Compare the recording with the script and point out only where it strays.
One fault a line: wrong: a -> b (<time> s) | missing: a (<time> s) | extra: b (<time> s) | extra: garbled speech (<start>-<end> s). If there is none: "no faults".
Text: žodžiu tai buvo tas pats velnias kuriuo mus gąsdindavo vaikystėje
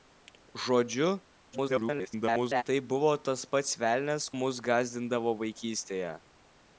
extra: garbled speech (1.5-2.6 s)
missing: kuriuo (4.3 s)